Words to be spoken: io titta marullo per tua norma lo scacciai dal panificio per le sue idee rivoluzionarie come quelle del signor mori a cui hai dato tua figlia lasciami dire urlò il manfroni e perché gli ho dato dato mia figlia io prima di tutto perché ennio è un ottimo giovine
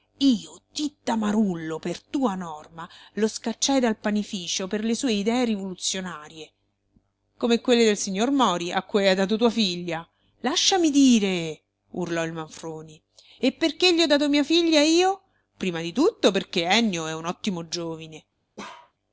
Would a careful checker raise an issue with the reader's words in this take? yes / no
yes